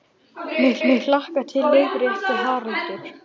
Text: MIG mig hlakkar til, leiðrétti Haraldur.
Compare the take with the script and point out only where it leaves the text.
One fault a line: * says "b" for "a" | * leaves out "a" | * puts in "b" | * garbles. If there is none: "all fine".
all fine